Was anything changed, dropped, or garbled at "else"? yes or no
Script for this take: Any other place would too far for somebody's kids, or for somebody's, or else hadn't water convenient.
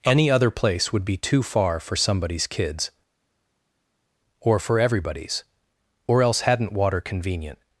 no